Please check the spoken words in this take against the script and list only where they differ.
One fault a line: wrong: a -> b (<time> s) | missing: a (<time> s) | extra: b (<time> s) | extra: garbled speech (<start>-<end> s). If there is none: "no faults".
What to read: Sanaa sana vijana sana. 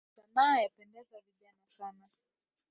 wrong: sana -> yapendeza (0.6 s)